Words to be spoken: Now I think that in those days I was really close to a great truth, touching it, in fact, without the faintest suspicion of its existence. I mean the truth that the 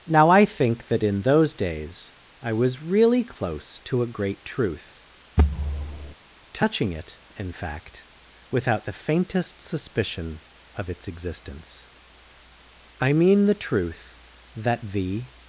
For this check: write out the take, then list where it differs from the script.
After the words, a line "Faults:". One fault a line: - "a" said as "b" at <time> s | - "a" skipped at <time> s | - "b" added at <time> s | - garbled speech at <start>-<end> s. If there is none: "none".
Now I think that in those days I was really close to a great truth, touching it, in fact, without the faintest suspicion of its existence. I mean the truth that the
Faults:
none